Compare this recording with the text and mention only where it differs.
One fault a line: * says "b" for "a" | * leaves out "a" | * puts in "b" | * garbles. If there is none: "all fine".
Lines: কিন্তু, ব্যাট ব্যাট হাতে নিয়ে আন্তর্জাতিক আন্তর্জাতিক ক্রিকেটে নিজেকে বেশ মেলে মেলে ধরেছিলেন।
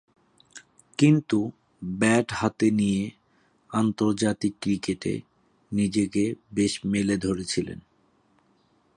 * leaves out "ব্যাট"
* leaves out "আন্তর্জাতিক"
* leaves out "মেলে"